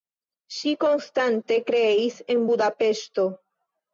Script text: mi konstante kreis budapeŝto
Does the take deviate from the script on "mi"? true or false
true